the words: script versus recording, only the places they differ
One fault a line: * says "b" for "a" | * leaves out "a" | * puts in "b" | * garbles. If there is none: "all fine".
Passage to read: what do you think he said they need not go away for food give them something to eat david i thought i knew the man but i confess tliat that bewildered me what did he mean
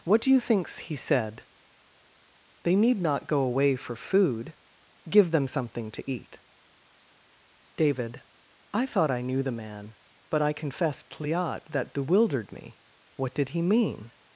* says "thinks" for "think"